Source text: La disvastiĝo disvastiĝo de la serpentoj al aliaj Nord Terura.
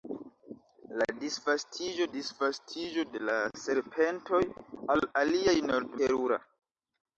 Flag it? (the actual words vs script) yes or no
no